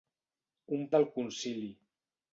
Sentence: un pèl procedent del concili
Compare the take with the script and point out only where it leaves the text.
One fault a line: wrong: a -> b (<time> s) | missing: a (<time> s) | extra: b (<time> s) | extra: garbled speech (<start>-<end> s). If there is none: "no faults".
missing: pèl procedent (0.9 s)